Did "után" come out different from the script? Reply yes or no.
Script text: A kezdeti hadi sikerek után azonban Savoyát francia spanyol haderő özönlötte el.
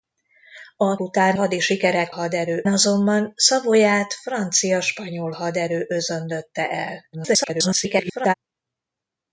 yes